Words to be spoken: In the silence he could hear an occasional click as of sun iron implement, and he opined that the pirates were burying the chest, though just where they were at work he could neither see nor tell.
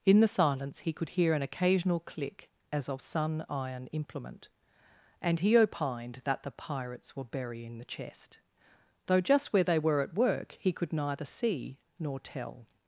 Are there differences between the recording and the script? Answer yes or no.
no